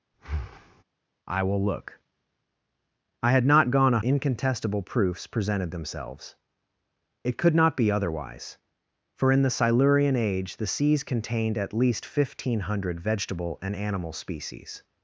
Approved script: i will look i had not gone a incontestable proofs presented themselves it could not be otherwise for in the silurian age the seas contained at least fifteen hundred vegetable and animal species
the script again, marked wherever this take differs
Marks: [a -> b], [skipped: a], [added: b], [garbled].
i will look i had not gone a incontestable proofs presented themselves it could not be otherwise for in the silurian age the seas contained at least fifteen hundred vegetable and animal species